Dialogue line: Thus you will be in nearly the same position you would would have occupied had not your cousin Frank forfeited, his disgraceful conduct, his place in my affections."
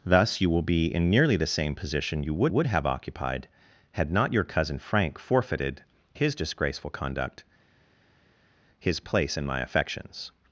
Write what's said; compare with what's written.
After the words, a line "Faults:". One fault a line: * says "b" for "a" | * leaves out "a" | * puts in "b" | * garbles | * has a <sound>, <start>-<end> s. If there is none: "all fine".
Thus you will be in nearly the same position you would would have occupied had not your cousin Frank forfeited, his disgraceful conduct, his place in my affections."
Faults:
all fine